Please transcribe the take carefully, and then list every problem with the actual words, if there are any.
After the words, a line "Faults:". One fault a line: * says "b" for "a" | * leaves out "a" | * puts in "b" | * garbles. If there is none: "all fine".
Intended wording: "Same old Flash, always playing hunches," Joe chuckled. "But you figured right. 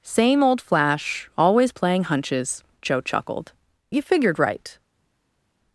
"Same old Flash, always playing hunches," Joe chuckled. "You figured right.
Faults:
* leaves out "But"